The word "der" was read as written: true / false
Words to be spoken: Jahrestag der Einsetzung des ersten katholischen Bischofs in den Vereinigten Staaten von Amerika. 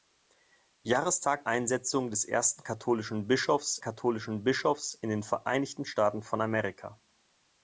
false